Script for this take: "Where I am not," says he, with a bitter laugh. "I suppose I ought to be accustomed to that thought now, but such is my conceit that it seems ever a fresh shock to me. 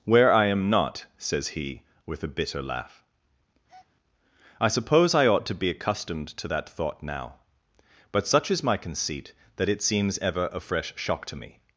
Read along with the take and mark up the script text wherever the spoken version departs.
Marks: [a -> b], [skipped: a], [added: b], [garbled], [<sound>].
"Where I am not," says he, with a bitter laugh. [breath] "I suppose I ought to be accustomed to that thought now, but such is my conceit that it seems ever a fresh shock to me.